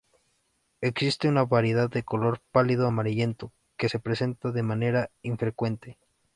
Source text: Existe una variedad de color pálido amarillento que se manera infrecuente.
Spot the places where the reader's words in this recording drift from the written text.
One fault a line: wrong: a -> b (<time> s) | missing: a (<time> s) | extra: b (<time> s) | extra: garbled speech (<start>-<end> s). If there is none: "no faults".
extra: presenta de (4.0 s)